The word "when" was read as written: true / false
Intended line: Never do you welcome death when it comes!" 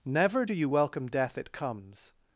false